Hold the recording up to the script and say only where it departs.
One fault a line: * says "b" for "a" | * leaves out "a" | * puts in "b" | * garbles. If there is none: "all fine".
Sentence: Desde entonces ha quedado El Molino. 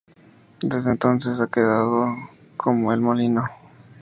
* puts in "como"